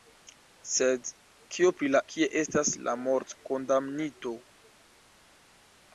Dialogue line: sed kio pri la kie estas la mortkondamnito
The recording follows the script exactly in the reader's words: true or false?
true